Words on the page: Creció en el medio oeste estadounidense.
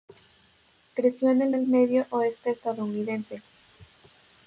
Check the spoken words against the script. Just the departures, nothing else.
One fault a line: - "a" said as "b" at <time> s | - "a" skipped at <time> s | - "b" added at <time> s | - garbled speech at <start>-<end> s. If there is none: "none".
- "el" added at 1.5 s